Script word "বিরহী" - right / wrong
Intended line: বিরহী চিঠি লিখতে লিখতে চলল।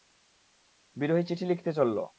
right